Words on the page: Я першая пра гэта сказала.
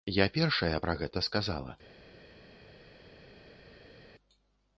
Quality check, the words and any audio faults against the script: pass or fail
pass